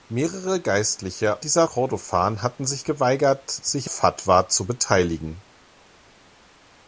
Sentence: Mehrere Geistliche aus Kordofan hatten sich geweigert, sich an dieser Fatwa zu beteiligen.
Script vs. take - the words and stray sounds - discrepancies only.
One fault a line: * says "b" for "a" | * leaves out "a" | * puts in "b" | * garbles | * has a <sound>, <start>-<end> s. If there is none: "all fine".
* says "dieser" for "aus"
* leaves out "an dieser"